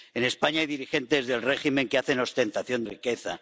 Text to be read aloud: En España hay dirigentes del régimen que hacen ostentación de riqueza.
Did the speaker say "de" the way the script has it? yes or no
no